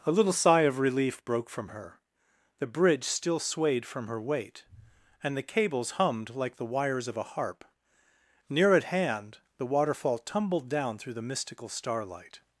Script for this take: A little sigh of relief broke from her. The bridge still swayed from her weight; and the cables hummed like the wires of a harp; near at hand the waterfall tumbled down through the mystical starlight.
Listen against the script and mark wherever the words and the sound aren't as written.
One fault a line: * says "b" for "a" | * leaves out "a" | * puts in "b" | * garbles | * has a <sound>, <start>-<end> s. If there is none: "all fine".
all fine